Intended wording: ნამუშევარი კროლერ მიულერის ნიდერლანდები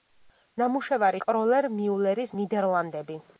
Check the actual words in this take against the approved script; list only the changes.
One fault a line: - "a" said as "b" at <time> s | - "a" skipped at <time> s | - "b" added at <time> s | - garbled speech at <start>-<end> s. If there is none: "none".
none